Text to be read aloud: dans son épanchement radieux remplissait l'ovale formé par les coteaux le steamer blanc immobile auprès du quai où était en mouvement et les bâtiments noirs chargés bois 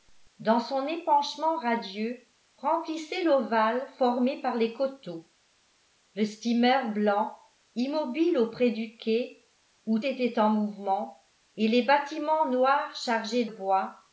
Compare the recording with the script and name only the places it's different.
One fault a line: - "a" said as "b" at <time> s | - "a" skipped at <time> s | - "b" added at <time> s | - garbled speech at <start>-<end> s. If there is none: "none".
none